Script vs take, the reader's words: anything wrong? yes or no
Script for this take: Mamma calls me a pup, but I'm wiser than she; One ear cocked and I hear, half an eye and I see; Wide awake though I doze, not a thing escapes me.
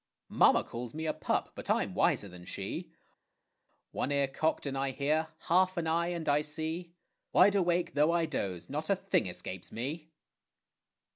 no